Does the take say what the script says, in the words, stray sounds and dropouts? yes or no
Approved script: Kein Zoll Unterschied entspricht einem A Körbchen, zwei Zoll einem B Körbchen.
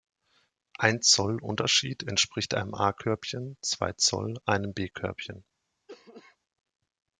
no